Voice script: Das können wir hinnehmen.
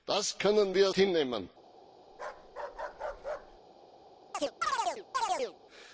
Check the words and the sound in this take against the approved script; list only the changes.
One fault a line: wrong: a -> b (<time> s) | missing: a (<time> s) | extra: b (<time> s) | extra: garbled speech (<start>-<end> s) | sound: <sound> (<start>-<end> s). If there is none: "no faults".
sound: bark (2.1-3.6 s)
sound: chirp (4.3-5.6 s)